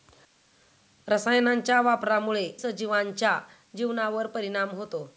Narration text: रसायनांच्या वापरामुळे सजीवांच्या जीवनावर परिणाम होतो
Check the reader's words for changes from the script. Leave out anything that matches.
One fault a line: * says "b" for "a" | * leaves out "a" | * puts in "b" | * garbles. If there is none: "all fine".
all fine